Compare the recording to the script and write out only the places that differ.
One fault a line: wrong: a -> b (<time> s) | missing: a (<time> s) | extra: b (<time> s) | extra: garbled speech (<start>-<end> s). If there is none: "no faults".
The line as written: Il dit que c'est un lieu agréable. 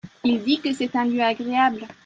no faults